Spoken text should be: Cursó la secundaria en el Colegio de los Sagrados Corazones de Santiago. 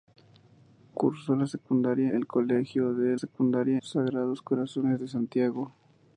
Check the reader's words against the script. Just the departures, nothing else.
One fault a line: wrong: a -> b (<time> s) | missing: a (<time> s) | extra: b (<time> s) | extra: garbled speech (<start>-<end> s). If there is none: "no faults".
missing: en (2.1 s)
wrong: los -> secundaria (3.1 s)